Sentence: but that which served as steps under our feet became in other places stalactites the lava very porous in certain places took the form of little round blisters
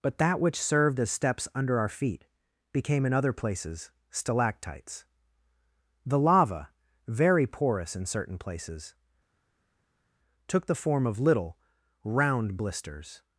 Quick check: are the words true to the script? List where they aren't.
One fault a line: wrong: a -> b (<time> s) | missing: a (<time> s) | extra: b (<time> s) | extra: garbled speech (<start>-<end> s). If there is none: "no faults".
no faults